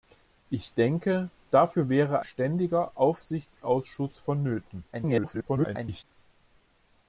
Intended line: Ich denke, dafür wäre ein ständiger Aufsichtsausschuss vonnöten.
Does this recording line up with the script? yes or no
no